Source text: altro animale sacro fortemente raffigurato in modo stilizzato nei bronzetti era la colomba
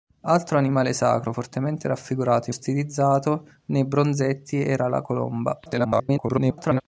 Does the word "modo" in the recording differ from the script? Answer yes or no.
yes